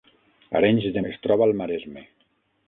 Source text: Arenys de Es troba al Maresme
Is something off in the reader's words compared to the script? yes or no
no